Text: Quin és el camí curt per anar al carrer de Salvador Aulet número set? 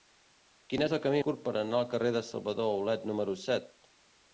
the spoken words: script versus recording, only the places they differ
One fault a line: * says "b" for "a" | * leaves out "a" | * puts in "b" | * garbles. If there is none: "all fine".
all fine